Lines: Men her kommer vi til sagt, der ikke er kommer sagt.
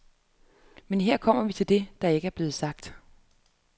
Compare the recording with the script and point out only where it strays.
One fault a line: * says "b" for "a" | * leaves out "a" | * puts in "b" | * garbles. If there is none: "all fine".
* says "det" for "sagt"
* says "blevet" for "kommer"